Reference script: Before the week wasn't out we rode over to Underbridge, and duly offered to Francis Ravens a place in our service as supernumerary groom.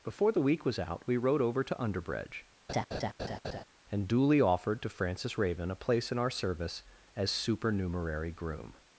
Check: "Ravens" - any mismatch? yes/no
yes